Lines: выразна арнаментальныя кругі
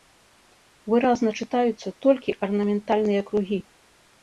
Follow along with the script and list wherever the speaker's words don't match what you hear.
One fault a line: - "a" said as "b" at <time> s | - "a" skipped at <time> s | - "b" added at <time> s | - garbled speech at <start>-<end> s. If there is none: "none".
- "чытаюцца толькі" added at 1.4 s